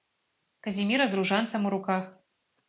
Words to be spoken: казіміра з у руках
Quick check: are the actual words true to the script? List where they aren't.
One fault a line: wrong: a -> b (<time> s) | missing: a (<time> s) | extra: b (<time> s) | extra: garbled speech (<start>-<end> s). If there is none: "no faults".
extra: ружанцам (1.2 s)